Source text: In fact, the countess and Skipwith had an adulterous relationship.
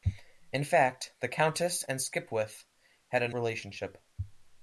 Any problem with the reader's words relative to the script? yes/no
yes